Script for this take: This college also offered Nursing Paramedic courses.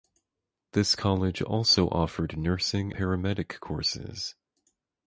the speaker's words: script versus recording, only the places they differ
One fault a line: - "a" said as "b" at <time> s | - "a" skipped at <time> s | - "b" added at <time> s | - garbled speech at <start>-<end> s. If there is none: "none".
none